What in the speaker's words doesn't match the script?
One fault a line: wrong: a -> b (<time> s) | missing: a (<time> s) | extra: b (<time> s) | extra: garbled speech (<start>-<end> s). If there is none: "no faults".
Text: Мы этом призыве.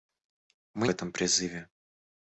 no faults